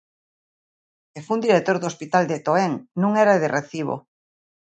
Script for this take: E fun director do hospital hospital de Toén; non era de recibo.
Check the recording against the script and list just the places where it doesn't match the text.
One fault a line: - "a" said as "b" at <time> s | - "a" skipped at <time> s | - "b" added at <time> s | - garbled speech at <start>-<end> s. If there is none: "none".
- "hospital" skipped at 2.2 s